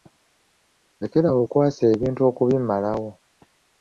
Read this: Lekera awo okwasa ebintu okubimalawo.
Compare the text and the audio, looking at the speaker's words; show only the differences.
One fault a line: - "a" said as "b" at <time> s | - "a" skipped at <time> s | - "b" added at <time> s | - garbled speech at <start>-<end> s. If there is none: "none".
none